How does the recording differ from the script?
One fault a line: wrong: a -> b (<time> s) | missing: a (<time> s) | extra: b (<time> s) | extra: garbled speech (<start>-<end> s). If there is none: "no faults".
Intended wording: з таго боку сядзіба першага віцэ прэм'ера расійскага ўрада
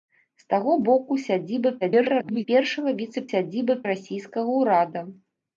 extra: garbled speech (1.8-2.5 s)
wrong: прэм'ера -> сядзіба (3.3 s)